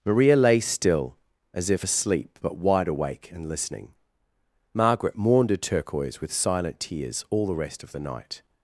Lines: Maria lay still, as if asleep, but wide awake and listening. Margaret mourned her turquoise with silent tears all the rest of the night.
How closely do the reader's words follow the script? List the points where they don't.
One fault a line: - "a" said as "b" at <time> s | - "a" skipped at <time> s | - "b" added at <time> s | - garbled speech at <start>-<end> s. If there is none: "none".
none